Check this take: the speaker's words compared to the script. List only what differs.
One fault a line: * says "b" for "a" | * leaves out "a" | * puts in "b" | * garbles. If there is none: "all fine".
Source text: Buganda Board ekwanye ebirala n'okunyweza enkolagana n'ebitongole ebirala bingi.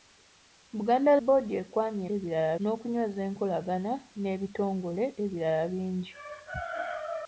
all fine